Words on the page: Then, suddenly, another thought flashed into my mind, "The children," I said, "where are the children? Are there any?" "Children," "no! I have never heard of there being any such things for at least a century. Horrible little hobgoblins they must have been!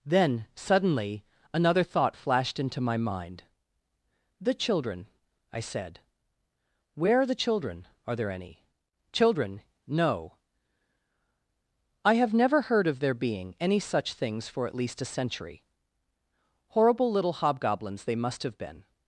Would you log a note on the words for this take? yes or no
no